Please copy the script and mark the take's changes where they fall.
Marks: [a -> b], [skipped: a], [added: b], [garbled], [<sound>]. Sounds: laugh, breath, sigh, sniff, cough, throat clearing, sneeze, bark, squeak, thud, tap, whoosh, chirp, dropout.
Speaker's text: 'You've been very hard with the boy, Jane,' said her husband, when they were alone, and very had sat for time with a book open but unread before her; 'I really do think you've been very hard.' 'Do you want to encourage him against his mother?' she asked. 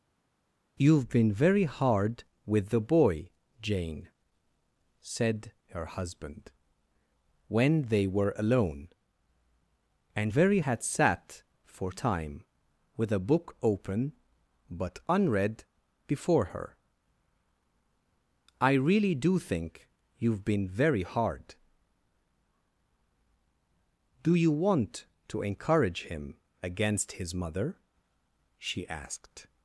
'You've been very hard with the boy, Jane,' said her husband, when they were alone, and very had sat for time with a book open but unread before her; 'I really do think you've been very hard.' 'Do you want to encourage him against his mother?' she asked.